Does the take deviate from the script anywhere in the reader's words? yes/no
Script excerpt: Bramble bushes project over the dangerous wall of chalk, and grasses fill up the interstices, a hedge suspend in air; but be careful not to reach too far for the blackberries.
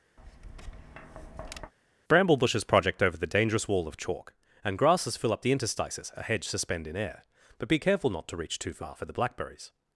no